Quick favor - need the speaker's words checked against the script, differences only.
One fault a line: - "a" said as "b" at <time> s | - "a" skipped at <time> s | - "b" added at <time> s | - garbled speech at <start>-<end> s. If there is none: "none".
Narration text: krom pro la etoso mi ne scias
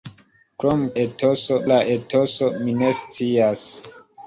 - "pro" said as "etoso" at 1.0 s